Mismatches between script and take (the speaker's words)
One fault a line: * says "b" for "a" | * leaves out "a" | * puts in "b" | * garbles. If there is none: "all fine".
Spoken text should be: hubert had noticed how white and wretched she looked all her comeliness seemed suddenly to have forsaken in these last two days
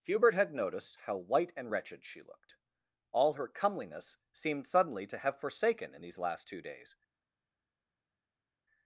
all fine